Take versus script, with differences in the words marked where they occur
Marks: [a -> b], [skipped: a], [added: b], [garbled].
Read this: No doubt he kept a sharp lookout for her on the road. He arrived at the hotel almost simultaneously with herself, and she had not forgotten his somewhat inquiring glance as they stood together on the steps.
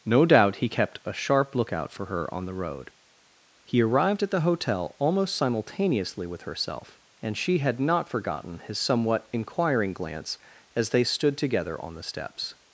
No doubt he kept a sharp lookout for her on the road. He arrived at the hotel almost simultaneously with herself, and she had not forgotten his somewhat inquiring glance as they stood together on the steps.